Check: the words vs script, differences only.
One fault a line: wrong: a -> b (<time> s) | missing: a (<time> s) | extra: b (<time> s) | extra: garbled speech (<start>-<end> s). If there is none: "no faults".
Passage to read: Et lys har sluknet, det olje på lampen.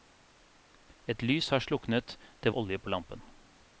no faults